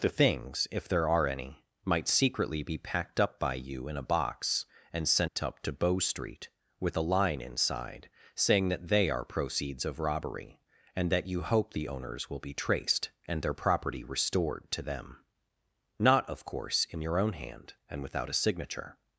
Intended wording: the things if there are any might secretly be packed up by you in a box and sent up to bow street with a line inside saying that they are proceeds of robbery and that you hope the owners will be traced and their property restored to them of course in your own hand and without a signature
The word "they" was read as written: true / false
true